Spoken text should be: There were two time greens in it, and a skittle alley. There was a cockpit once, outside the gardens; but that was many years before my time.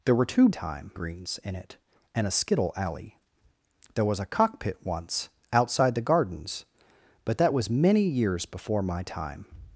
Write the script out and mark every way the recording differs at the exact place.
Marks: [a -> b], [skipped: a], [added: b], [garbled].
There were two time greens in it, and a skittle alley. There was a cockpit once, outside the gardens; but that was many years before my time.